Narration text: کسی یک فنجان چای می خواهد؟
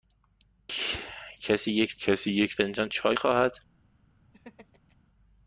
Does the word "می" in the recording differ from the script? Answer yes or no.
yes